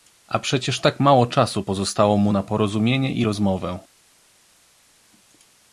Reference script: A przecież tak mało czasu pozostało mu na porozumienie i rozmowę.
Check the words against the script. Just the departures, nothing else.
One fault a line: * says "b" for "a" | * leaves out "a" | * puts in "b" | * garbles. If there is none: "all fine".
all fine